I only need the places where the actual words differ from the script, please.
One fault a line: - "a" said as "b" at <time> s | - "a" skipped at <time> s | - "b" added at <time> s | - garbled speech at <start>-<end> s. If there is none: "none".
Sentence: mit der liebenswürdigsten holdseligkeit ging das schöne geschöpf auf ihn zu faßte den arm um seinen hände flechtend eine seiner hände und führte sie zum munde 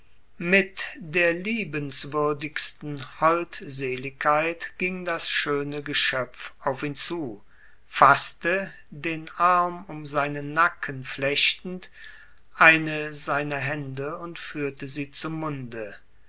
- "hände" said as "nacken" at 10.5 s